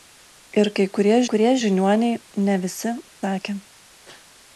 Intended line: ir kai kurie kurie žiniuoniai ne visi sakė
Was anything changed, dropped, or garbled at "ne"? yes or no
no